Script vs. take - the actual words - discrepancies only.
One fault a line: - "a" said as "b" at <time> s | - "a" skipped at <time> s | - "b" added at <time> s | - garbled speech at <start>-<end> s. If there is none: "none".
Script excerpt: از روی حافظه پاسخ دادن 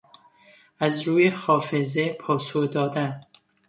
none